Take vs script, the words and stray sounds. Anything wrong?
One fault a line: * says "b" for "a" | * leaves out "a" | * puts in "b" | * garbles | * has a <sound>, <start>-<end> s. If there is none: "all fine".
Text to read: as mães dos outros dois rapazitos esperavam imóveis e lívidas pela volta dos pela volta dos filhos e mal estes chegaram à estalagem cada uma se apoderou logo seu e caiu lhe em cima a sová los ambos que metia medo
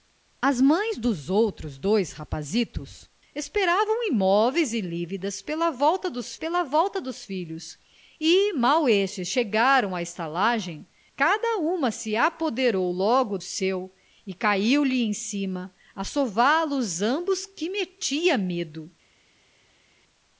all fine